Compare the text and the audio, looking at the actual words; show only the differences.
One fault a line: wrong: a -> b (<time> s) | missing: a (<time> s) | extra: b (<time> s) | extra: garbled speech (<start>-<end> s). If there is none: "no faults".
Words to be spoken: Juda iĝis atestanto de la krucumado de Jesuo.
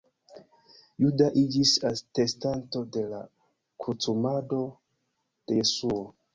no faults